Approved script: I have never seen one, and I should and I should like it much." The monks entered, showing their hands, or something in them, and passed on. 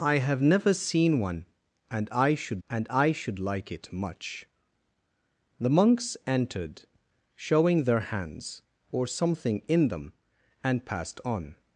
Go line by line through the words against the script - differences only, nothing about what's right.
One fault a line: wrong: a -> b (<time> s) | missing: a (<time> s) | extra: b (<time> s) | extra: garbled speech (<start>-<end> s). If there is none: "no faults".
no faults